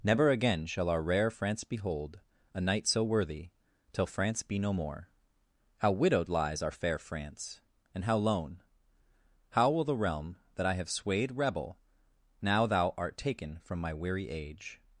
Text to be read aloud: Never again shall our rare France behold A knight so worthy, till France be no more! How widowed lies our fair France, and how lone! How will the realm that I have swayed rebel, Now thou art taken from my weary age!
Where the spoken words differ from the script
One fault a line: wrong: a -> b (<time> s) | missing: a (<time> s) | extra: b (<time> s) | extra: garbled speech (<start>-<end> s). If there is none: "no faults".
no faults